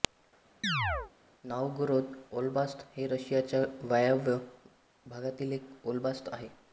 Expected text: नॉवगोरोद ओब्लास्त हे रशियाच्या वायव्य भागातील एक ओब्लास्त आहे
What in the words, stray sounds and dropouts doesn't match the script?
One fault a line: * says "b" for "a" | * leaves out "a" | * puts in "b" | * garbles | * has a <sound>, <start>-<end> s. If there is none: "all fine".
* has a chirp, 0.6-1.1 s